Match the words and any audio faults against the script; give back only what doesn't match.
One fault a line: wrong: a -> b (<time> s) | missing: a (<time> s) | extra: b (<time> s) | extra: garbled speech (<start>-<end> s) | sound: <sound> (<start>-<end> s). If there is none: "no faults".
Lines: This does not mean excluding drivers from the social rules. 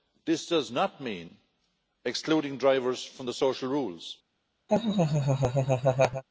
sound: laugh (4.7-6.2 s)